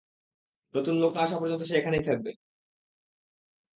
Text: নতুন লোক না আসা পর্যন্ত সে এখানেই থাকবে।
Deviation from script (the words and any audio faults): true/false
false